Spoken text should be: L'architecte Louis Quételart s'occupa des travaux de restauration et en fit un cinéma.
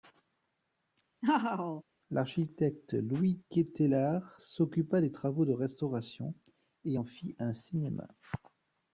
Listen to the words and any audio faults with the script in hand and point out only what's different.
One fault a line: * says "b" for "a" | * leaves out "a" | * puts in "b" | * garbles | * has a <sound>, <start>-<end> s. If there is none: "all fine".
* has a laugh, 1.2-1.8 s